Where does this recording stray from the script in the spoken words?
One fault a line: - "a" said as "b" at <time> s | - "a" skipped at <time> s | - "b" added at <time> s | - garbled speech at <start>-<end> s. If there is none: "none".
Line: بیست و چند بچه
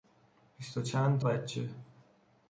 none